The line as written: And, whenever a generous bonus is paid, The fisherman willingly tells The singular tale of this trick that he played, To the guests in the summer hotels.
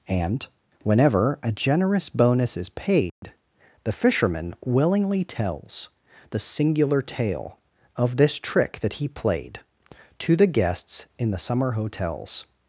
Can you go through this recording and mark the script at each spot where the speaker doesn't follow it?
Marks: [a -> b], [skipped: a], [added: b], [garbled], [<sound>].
And, whenever a generous bonus is paid, [dropout] The fisherman willingly tells The singular tale of this trick that he played, To the guests in the summer hotels.